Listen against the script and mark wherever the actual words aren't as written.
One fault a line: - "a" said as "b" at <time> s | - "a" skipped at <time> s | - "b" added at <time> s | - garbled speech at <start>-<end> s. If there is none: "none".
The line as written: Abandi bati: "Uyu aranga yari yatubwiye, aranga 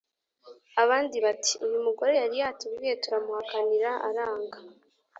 - "aranga" said as "mugore" at 1.9 s
- "turamuhakanira" added at 3.0 s